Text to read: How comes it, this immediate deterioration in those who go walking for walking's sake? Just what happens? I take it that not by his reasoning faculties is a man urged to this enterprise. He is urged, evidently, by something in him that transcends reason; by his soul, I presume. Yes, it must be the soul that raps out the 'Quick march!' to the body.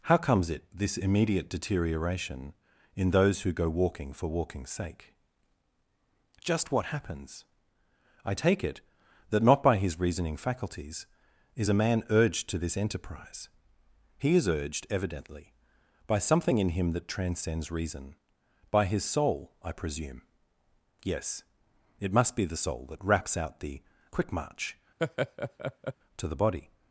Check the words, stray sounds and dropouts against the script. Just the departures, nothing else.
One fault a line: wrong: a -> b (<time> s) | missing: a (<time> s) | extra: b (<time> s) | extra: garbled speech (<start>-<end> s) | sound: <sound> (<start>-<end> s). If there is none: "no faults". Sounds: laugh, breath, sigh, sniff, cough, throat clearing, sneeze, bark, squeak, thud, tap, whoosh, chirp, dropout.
sound: laugh (25.0-25.9 s)